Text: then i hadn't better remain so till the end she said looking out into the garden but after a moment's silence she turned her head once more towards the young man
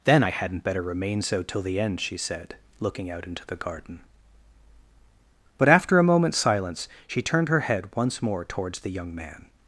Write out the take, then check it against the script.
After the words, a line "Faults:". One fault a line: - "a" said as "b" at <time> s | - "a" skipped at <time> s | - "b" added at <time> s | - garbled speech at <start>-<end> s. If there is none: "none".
then i hadn't better remain so till the end she said looking out into the garden but after a moment's silence she turned her head once more towards the young man
Faults:
none